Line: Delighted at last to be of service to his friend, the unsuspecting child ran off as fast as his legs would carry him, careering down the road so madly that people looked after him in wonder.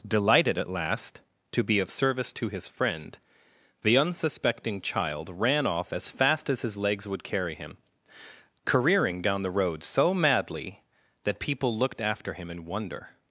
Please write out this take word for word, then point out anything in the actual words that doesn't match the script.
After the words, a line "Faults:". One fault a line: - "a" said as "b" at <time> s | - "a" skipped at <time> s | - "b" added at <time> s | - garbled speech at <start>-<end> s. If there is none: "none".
Delighted at last to be of service to his friend, the unsuspecting child ran off as fast as his legs would carry him, careering down the road so madly that people looked after him in wonder.
Faults:
none